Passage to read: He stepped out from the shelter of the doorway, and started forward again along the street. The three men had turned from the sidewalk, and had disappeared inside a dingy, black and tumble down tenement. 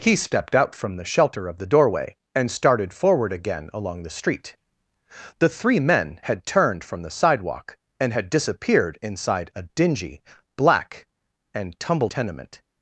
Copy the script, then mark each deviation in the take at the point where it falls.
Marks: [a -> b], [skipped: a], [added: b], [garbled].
He stepped out from the shelter of the doorway, and started forward again along the street. The three men had turned from the sidewalk, and had disappeared inside a dingy, black and tumble [skipped: down] tenement.